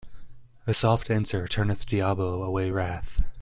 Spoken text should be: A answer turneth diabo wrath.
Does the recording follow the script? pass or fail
fail